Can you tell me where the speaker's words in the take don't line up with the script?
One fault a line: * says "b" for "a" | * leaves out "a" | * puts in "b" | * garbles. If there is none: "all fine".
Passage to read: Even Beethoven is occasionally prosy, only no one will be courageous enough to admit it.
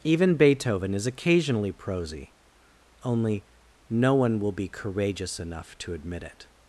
all fine